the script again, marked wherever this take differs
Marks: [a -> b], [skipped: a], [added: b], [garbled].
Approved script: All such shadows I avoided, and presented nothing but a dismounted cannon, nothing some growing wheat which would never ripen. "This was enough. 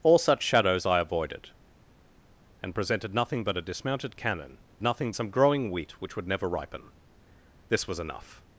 All such shadows I avoided, and presented nothing but a dismounted cannon, nothing some growing wheat which would never ripen. "This was enough.